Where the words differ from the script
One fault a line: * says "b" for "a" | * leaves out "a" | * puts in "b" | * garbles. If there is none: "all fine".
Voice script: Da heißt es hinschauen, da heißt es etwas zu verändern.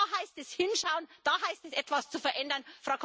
all fine